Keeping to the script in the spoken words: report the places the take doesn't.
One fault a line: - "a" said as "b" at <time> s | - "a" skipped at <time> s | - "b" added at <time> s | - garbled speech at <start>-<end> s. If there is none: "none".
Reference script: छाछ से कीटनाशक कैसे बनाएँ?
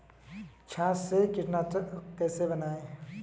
none